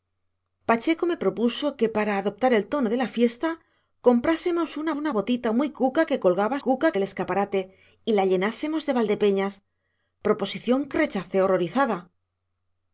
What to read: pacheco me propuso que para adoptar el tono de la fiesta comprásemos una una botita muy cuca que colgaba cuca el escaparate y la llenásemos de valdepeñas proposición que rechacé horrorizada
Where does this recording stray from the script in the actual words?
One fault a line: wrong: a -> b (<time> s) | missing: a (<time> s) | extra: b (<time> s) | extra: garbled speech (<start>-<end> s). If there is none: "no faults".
no faults